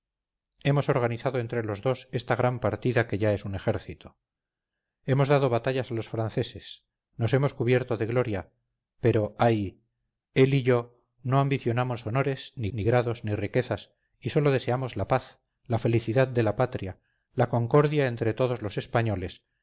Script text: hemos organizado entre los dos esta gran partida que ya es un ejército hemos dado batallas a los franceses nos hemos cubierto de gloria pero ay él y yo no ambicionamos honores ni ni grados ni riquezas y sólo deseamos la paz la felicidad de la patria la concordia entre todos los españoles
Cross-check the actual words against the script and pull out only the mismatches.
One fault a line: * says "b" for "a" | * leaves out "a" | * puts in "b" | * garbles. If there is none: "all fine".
all fine